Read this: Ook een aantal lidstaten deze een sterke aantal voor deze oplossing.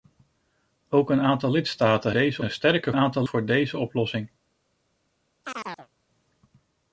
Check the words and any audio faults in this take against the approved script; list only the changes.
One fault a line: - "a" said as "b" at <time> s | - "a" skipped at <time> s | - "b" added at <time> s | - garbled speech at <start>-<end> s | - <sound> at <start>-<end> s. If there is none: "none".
- chirp at 5.4-5.9 s